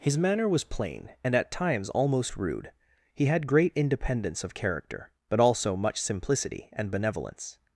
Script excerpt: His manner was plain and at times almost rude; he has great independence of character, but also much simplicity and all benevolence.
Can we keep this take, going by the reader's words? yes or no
no